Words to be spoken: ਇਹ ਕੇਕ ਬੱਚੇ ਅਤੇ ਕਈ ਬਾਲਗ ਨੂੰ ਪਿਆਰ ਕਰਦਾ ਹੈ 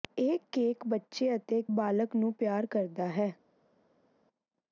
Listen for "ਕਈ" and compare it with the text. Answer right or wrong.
wrong